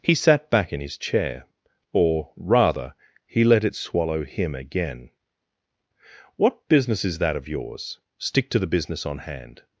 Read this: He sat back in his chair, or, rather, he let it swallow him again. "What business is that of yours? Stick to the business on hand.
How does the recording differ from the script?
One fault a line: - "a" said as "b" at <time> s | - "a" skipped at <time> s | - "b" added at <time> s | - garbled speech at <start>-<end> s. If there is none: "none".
none